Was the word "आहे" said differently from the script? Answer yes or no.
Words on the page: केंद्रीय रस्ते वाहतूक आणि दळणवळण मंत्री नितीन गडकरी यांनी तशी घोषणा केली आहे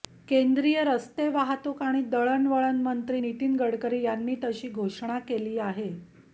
no